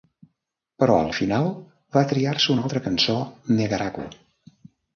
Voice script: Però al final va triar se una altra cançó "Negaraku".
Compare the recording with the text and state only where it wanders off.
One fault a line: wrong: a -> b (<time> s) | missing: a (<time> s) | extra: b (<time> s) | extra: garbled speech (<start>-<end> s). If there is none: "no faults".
no faults